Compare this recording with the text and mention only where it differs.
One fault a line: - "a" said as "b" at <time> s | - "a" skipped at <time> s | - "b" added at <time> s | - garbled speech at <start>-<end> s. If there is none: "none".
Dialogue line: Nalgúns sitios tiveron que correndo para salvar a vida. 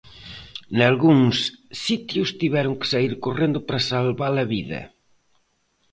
- "saír" added at 2.9 s